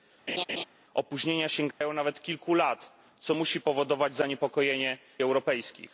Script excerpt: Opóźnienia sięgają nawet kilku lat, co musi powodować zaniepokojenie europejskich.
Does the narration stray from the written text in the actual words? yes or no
no